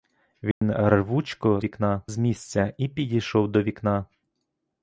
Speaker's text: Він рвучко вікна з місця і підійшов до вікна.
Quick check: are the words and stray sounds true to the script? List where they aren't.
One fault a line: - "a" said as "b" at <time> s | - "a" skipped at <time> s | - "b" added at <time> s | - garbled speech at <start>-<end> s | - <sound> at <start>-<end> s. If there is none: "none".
- dropout at 0.5-0.6 s